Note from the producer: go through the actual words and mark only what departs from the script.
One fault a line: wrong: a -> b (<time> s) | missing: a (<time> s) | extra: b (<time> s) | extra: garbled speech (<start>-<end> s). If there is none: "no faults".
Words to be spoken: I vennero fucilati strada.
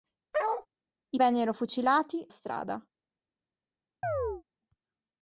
no faults